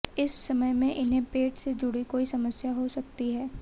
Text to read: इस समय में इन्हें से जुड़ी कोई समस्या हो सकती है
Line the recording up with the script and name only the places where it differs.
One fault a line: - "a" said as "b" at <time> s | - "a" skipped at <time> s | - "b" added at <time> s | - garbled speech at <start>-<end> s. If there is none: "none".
- "पेट" added at 1.3 s